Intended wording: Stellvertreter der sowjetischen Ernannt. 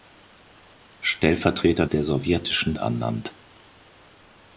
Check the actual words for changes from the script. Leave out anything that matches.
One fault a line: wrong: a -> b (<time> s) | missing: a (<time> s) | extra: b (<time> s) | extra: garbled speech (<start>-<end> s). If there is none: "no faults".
no faults